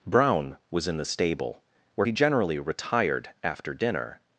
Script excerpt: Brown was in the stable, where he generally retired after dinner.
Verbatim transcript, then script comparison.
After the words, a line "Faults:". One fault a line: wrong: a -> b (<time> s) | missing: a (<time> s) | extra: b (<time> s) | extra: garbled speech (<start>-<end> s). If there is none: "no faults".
Brown was in the stable, where he generally retired after dinner.
Faults:
no faults